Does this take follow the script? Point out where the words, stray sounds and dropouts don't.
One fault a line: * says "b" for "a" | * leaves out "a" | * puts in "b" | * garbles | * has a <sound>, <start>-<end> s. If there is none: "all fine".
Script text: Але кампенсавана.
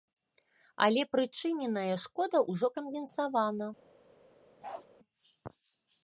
* puts in "прычыненая шкода ўжо"
* has a bark, 4.6-4.9 s